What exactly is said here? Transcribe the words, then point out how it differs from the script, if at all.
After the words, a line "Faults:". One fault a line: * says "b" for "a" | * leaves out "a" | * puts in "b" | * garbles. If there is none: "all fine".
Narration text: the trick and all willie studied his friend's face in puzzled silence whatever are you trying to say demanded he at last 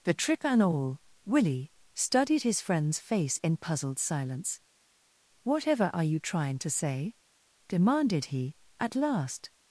the trick and all willie studied his friend's face in puzzled silence whatever are you trying to say demanded he at last
Faults:
all fine